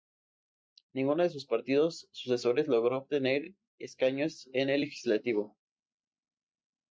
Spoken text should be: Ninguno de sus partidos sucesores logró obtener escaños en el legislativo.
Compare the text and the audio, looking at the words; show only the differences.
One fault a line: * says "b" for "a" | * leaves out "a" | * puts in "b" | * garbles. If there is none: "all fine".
all fine